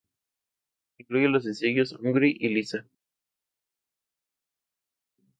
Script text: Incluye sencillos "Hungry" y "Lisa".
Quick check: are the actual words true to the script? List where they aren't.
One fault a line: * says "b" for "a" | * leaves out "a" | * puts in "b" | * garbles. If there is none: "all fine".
* puts in "los"